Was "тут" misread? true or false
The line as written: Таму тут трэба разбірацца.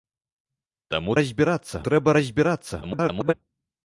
true